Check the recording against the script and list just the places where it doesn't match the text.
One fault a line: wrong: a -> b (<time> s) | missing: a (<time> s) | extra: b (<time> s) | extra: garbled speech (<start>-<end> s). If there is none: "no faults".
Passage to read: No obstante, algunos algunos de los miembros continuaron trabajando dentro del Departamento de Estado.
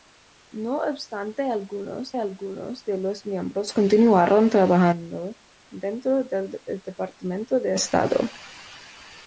no faults